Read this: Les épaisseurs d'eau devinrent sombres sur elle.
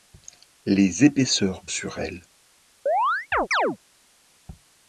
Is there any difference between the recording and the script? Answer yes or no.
yes